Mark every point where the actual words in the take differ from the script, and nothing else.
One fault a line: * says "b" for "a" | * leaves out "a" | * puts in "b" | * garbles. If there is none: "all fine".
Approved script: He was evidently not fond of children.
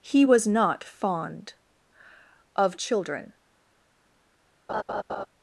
* leaves out "evidently"